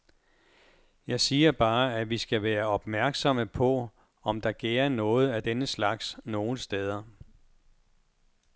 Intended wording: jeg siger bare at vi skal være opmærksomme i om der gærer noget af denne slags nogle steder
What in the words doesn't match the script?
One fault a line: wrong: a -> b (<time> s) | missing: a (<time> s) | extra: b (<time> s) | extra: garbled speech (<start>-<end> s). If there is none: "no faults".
wrong: i -> på (3.5 s)